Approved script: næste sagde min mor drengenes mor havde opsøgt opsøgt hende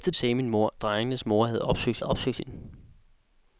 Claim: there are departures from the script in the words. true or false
false